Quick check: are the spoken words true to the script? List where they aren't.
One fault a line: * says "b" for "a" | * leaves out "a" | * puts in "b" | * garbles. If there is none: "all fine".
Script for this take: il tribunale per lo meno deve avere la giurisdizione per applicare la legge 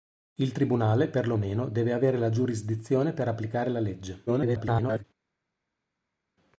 * garbles